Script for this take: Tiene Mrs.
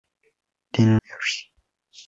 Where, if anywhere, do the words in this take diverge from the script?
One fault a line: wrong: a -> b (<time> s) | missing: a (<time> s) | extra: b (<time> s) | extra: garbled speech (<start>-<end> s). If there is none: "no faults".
no faults